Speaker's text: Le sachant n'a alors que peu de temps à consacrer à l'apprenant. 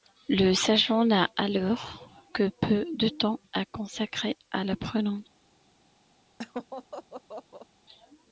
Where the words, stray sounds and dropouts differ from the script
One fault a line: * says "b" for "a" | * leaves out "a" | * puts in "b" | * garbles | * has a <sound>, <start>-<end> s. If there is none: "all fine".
* has a laugh, 6.4-7.7 s